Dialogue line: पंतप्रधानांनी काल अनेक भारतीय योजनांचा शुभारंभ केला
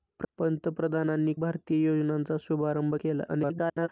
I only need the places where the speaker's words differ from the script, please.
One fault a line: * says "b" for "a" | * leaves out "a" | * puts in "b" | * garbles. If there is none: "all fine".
* leaves out "काल अनेक"
* garbles